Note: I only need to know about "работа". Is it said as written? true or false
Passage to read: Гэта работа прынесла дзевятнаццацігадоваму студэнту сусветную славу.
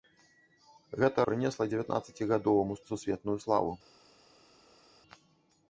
false